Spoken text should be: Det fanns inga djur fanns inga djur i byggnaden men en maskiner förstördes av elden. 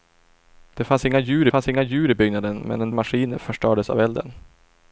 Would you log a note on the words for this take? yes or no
no